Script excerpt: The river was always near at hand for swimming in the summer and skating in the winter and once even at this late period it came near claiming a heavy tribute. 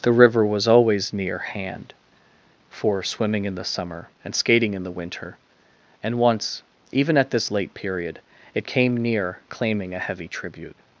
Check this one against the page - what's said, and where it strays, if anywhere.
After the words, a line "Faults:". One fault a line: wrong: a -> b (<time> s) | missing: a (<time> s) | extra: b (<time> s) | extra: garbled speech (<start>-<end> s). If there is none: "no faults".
The river was always near hand for swimming in the summer and skating in the winter and once even at this late period it came near claiming a heavy tribute.
Faults:
missing: at (1.4 s)